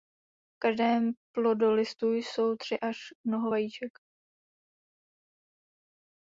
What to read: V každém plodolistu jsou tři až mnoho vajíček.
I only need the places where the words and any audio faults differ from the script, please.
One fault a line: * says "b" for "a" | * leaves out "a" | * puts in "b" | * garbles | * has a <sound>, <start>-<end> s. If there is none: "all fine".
all fine